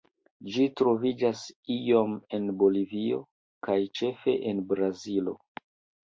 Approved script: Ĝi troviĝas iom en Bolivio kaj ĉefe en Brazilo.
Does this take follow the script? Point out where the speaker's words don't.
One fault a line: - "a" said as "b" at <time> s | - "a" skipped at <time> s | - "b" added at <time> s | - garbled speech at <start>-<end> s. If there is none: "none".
none